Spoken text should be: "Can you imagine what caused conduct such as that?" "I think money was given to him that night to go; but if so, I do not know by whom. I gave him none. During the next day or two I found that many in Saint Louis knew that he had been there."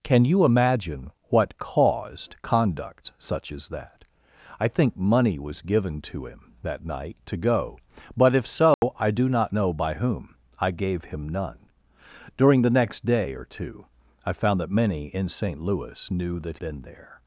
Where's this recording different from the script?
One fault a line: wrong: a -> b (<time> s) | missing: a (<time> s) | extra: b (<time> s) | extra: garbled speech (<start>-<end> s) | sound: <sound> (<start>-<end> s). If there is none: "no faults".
sound: dropout (8.7-8.8 s)
missing: he had (16.6 s)